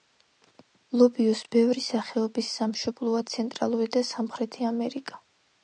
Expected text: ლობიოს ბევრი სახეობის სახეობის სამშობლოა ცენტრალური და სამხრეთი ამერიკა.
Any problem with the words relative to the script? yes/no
yes